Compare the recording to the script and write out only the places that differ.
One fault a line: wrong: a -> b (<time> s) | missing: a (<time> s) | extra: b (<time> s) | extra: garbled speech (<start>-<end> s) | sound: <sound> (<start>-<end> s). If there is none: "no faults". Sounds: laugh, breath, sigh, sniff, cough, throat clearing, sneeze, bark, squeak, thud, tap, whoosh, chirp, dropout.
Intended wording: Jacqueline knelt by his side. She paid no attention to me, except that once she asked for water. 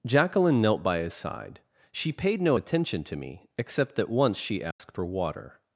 sound: dropout (4.7-4.8 s)